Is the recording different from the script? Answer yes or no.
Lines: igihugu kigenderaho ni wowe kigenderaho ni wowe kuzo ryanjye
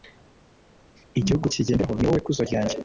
yes